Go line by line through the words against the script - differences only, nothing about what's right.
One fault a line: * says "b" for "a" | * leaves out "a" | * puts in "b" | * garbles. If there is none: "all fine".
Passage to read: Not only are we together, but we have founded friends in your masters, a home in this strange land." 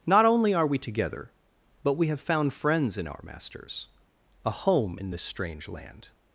* says "found" for "founded"
* says "our" for "your"